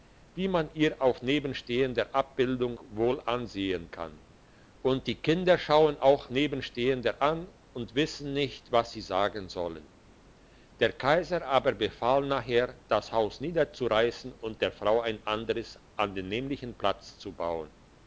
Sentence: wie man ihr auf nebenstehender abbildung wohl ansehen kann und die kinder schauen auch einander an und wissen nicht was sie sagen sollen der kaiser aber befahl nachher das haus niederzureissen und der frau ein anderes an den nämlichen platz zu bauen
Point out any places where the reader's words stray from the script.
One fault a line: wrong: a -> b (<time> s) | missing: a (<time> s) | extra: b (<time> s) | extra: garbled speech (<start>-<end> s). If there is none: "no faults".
wrong: einander -> nebenstehender (6.3 s)